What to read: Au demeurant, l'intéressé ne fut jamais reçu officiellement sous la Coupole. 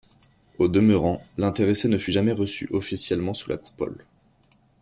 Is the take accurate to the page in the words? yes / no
yes